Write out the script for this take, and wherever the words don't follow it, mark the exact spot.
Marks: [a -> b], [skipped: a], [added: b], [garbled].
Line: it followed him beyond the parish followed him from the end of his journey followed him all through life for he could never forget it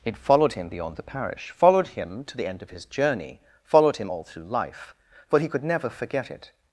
it followed him beyond the parish followed him [from -> to] the end of his journey followed him all through life for he could never forget it